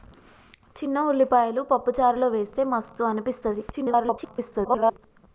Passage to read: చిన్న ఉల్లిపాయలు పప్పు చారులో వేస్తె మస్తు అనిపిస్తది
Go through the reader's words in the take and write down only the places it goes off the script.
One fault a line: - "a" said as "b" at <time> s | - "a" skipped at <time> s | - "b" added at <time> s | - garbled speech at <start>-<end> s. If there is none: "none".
- garbled speech at 3.7-5.0 s